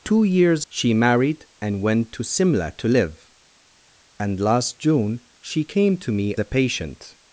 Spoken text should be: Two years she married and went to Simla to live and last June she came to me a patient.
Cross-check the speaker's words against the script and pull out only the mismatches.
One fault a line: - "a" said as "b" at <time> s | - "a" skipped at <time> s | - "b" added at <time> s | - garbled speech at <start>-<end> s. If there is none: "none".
none